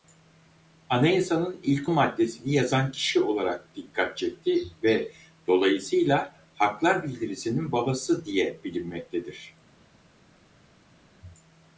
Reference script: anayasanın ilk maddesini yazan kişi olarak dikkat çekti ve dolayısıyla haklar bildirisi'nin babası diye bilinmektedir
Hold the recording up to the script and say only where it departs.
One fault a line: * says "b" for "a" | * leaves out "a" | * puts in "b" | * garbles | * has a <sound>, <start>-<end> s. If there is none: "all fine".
all fine